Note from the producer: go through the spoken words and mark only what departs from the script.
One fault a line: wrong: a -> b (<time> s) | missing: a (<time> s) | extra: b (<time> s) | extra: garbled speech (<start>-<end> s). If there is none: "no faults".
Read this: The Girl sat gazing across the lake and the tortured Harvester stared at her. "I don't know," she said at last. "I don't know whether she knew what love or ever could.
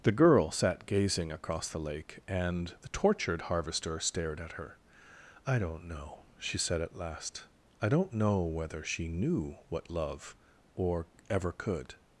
no faults